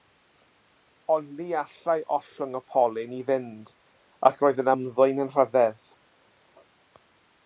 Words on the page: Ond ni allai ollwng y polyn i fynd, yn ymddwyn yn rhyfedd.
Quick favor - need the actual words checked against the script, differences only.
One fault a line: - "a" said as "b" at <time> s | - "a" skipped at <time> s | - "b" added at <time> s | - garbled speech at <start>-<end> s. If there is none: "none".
- "ac roedd" added at 4.3 s